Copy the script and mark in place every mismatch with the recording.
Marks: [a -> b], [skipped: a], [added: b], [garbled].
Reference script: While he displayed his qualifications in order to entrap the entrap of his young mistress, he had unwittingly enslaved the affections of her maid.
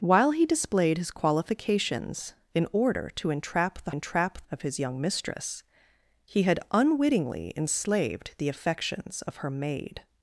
While he displayed his qualifications in order to entrap the entrap of his young mistress, he had unwittingly enslaved the affections of her maid.